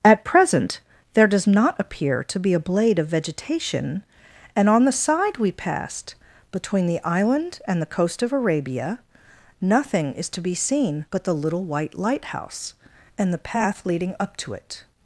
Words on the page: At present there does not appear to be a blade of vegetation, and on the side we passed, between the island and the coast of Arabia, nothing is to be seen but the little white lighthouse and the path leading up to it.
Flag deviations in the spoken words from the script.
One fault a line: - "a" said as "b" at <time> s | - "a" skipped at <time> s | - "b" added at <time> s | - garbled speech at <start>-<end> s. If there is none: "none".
none